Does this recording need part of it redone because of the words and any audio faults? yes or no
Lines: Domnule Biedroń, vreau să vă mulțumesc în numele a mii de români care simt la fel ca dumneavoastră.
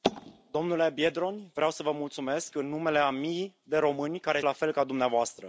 yes